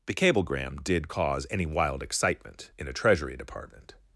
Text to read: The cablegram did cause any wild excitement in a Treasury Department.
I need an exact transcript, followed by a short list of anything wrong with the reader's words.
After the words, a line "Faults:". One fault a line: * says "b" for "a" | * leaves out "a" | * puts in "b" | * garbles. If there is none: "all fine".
The cablegram did cause any wild excitement in a Treasury Department.
Faults:
all fine